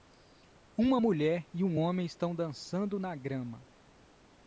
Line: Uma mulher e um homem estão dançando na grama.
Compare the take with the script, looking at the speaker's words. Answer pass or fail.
pass